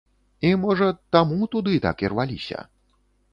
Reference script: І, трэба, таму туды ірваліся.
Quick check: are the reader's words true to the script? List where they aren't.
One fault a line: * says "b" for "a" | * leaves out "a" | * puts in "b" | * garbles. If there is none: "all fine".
* says "можа" for "трэба"
* puts in "так"